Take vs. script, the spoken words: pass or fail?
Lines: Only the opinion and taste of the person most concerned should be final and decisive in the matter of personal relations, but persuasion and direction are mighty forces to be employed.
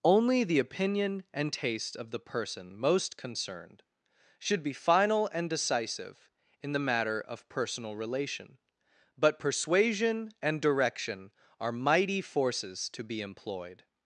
fail